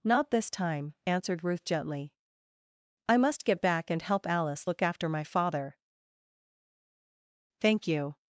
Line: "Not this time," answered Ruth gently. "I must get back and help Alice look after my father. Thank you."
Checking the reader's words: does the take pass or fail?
pass